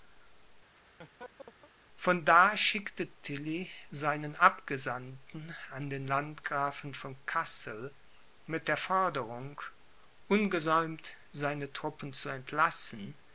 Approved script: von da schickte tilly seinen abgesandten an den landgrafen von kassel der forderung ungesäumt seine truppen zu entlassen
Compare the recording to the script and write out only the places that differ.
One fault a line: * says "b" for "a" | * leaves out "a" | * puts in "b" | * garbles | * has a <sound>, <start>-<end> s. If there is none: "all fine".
* has a laugh, 0.7-1.7 s
* puts in "mit"